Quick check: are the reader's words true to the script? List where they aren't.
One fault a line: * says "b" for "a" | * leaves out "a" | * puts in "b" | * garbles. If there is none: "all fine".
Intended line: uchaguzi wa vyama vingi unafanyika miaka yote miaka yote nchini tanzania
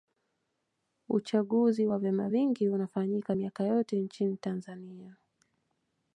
* leaves out "miaka yote"